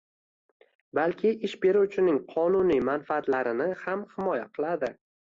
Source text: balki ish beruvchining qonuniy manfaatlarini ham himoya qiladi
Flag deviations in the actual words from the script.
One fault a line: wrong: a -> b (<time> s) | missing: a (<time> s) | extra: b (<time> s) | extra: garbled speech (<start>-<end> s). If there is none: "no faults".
no faults